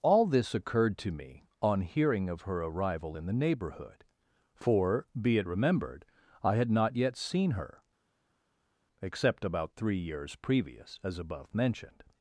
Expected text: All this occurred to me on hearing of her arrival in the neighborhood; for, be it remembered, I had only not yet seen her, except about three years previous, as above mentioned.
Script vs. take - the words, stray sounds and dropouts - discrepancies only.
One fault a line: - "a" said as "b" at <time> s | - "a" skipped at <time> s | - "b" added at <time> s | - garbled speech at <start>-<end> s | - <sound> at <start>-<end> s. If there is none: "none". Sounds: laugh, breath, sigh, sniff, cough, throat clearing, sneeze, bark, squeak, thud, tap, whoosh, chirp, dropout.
- "only" skipped at 6.7 s